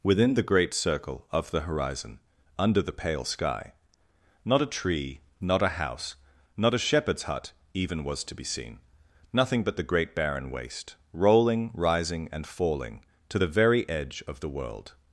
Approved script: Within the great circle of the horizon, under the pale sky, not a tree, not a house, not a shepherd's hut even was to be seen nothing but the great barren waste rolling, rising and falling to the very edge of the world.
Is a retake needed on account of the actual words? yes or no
no